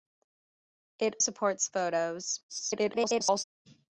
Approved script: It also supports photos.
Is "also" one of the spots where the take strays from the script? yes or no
yes